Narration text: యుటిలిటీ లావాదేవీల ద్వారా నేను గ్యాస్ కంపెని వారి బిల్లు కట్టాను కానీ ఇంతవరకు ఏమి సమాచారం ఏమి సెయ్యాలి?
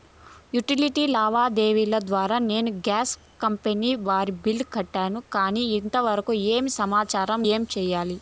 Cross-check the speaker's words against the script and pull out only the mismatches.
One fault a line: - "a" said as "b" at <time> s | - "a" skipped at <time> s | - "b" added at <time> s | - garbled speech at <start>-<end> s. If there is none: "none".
none